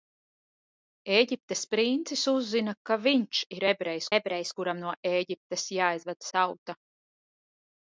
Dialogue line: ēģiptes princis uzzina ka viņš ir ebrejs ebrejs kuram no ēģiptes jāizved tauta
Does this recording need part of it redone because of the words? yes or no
no